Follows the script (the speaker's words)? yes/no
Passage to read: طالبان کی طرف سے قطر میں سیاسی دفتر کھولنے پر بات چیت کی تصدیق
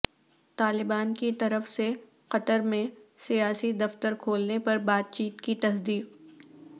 yes